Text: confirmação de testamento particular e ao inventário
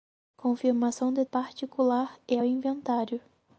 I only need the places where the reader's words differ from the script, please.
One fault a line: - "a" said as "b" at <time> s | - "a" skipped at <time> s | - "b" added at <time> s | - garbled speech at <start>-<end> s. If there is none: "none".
- "testamento" skipped at 1.2 s
- "ao" skipped at 2.4 s